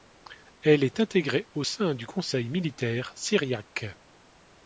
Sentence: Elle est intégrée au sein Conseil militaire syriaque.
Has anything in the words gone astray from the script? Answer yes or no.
yes